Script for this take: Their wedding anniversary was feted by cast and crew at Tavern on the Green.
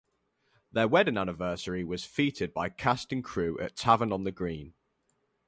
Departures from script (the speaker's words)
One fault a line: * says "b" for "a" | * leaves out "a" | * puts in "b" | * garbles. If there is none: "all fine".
all fine